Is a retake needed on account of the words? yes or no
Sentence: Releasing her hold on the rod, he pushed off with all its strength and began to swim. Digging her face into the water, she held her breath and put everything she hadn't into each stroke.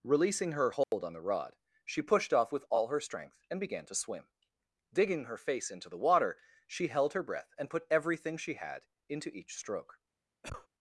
yes